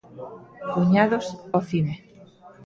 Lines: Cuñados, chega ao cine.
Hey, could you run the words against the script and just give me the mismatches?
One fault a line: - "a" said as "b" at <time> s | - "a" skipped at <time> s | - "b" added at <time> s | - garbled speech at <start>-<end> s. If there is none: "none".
- "chega" skipped at 1.2 s